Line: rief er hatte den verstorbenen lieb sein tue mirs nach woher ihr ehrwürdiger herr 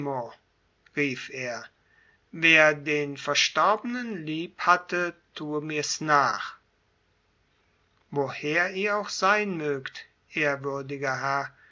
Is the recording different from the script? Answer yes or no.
yes